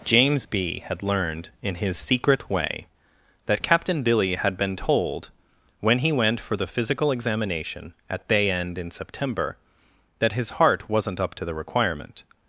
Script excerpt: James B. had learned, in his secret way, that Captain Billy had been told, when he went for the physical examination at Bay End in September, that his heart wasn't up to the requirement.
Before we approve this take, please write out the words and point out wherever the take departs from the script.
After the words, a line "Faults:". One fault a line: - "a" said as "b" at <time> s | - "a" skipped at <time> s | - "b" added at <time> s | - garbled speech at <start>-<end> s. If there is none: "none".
James B. had learned, in his secret way, that Captain Billy had been told, when he went for the physical examination at Bay End in September, that his heart wasn't up to the requirement.
Faults:
none